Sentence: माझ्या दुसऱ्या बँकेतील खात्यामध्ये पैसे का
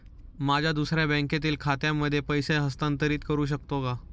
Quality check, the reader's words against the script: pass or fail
fail